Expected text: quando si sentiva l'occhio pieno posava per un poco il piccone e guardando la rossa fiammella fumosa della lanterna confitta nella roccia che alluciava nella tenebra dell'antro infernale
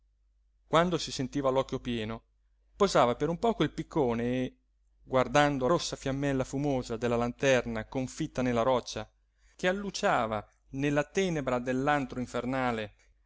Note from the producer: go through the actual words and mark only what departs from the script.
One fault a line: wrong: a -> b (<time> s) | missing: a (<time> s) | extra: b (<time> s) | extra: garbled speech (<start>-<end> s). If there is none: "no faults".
missing: la (5.7 s)